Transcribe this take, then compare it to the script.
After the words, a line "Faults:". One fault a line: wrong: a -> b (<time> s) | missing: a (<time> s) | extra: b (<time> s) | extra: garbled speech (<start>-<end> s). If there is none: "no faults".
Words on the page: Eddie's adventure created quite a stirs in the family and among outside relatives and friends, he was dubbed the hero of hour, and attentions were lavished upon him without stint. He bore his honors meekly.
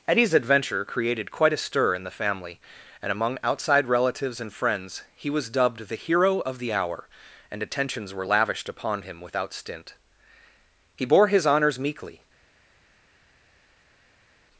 Eddie's adventure created quite a stir in the family and among outside relatives and friends, he was dubbed the hero of the hour, and attentions were lavished upon him without stint. He bore his honors meekly.
Faults:
wrong: stirs -> stir (1.6 s)
extra: the (6.6 s)